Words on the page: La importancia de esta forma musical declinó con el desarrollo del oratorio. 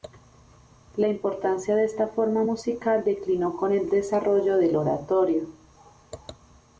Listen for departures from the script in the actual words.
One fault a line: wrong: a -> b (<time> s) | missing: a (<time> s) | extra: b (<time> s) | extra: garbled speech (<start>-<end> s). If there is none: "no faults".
no faults